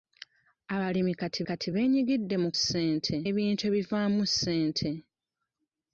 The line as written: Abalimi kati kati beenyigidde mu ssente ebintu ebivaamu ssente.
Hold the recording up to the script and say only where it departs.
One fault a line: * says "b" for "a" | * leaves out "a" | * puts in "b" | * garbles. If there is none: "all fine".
all fine